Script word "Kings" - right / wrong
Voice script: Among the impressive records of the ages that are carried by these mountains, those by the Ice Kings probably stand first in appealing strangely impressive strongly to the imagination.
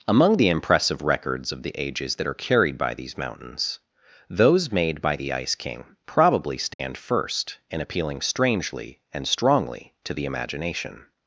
wrong